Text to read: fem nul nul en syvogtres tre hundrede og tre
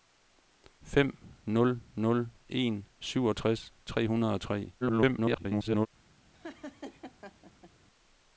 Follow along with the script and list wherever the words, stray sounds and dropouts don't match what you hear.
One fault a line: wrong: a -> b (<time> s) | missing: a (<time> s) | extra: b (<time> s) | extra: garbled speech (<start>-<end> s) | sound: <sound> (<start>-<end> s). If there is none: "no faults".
extra: garbled speech (4.8-5.9 s)
sound: laugh (6.3-7.7 s)